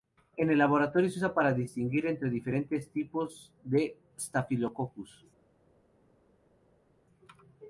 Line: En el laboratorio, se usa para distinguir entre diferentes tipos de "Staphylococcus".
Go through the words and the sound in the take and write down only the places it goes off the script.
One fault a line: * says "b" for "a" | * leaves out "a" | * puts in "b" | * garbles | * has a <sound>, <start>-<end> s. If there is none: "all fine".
all fine